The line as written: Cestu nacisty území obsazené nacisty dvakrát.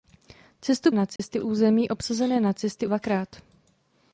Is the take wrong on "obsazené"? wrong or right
right